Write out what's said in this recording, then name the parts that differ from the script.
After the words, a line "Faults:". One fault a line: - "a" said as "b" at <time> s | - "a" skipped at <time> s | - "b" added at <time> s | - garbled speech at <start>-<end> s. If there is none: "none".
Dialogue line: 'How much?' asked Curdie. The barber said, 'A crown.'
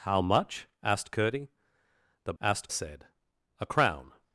'How much?' asked Curdie. The asked said, 'A crown.'
Faults:
- "barber" said as "asked" at 2.4 s